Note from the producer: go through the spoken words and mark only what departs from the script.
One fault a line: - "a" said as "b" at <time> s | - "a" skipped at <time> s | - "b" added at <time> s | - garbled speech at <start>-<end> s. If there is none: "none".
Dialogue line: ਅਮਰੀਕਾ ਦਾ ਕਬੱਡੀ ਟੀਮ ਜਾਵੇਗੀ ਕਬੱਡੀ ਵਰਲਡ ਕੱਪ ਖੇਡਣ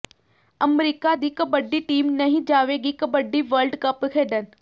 - "ਦਾ" said as "ਦੀ" at 1.1 s
- "ਨਹੀਂ" added at 2.1 s